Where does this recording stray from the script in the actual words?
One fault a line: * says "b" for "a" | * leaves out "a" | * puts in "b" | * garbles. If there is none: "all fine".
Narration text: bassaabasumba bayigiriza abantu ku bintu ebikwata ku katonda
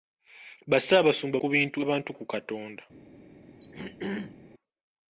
* leaves out "bayigiriza abantu"
* says "abantu" for "ebikwata"